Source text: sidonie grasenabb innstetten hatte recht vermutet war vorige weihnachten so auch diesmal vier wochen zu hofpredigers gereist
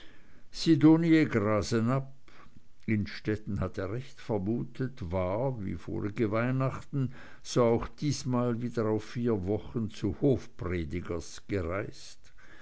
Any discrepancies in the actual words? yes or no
yes